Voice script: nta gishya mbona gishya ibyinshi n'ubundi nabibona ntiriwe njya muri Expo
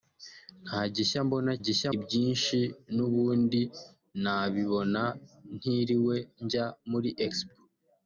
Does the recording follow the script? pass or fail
pass